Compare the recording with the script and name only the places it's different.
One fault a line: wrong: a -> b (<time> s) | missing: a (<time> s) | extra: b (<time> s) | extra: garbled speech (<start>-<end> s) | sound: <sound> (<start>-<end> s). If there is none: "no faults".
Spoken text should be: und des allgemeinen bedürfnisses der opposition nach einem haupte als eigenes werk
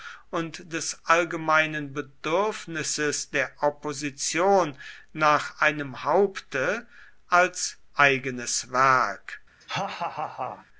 sound: laugh (9.6-10.7 s)